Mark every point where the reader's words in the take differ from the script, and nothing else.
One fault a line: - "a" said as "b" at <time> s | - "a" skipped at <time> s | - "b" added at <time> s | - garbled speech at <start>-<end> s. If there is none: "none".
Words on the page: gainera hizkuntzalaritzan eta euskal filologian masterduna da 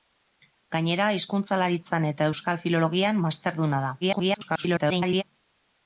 - garbled speech at 4.0-5.2 s